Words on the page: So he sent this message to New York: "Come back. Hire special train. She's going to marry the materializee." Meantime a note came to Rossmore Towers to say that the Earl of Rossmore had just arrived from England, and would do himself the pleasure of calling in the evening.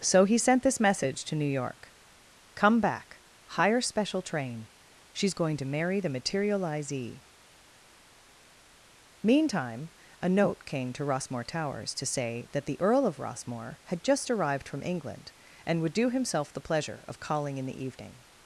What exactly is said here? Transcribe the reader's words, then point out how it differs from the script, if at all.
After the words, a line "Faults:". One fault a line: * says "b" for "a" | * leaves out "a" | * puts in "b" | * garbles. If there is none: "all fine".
So he sent this message to New York: "Come back. Hire special train. She's going to marry the materializee." Meantime a note came to Rossmore Towers to say that the Earl of Rossmore had just arrived from England, and would do himself the pleasure of calling in the evening.
Faults:
all fine